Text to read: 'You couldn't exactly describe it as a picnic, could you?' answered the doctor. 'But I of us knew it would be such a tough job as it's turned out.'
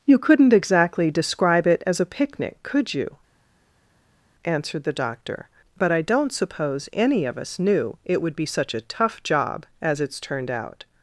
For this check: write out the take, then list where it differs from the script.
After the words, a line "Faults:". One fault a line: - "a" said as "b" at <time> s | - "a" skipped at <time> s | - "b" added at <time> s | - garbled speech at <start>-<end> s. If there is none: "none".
'You couldn't exactly describe it as a picnic, could you?' answered the doctor. 'But I don't suppose any of us knew it would be such a tough job as it's turned out.'
Faults:
- "don't suppose any" added at 6.0 s